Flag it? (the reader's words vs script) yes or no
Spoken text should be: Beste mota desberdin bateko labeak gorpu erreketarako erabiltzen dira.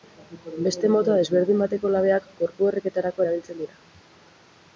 no